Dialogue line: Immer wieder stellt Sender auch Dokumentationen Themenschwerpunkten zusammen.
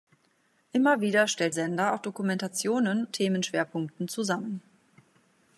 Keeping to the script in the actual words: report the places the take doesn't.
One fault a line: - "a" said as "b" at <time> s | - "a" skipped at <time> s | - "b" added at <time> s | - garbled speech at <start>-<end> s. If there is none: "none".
none